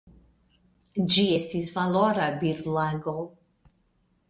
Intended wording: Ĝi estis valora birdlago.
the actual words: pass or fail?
pass